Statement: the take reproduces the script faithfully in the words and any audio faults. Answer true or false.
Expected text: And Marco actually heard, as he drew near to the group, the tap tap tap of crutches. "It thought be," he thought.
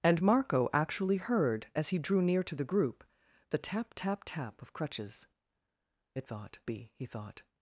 true